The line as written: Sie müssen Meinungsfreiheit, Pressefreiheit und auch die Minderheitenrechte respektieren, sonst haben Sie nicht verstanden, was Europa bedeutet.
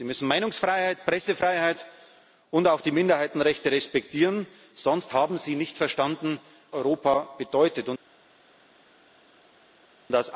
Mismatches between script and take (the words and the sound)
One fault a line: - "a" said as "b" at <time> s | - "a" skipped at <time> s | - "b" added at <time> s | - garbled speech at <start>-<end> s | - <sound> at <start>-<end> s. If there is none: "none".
- "was" skipped at 6.4 s